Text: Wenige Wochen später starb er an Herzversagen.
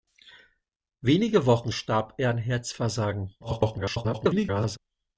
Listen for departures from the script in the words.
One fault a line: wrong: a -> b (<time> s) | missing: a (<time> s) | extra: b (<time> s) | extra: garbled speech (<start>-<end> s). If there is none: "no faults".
missing: später (1.7 s)
extra: garbled speech (3.4-4.8 s)